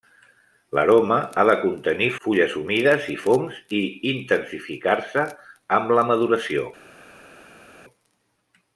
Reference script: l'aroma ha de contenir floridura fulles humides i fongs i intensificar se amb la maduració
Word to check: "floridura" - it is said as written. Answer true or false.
false